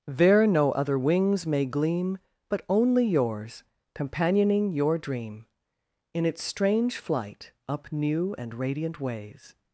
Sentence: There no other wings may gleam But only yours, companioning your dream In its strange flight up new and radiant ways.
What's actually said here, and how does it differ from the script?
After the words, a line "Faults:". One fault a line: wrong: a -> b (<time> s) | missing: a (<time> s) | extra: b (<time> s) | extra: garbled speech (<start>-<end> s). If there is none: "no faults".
There no other wings may gleam But only yours, companioning your dream In its strange flight up new and radiant ways.
Faults:
no faults